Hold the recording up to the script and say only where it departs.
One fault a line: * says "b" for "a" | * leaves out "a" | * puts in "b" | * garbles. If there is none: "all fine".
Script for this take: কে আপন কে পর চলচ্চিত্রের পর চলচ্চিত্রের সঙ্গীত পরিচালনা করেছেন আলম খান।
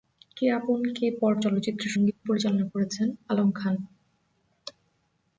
* leaves out "পর চলচ্চিত্রের"